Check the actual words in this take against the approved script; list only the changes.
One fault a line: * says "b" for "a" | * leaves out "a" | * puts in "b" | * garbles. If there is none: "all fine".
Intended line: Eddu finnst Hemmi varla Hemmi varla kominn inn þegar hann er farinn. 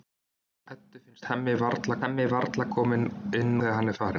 all fine